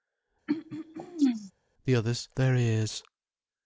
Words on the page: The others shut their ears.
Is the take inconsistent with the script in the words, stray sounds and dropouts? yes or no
yes